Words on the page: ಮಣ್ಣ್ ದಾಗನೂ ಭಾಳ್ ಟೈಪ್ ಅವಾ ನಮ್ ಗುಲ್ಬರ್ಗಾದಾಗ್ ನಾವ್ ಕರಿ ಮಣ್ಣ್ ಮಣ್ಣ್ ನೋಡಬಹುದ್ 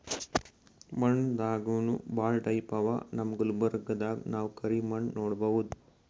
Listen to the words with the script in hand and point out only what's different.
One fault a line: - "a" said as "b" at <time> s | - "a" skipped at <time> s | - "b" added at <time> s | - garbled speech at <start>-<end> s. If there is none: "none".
- "ಮಣ್ಣ್" skipped at 5.1 s